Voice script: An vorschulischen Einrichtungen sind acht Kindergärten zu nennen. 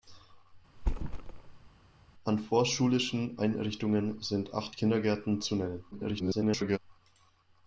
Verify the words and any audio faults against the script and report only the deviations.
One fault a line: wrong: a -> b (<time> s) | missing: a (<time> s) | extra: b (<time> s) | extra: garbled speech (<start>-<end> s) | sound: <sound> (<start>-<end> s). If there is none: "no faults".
sound: thud (0.8-1.7 s)
extra: garbled speech (5.9-6.8 s)